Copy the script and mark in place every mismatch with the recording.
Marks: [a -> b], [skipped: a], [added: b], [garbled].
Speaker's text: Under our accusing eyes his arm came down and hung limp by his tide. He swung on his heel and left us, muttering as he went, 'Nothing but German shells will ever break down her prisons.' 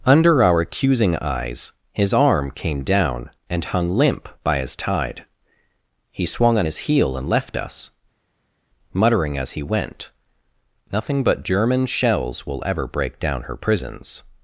Under our accusing eyes his arm came down and hung limp by his tide. He swung on his heel and left us, muttering as he went, 'Nothing but German shells will ever break down her prisons.'